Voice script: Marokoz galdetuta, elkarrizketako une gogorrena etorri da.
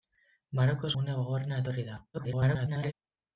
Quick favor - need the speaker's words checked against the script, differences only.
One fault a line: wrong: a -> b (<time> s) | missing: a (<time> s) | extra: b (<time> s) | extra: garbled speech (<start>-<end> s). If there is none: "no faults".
missing: galdetuta elkarrizketako (0.9 s)
extra: garbled speech (2.1-2.9 s)